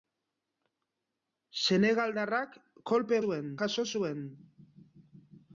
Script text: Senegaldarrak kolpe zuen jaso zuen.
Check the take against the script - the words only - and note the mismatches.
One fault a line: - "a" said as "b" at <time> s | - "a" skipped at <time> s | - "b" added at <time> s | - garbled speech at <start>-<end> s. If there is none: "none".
none